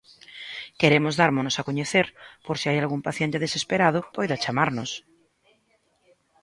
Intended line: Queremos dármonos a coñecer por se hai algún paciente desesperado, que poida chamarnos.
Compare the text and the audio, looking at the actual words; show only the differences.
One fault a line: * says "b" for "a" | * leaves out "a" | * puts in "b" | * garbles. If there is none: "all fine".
* leaves out "que"